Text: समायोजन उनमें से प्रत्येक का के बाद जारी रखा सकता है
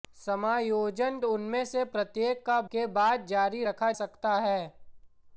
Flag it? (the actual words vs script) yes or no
no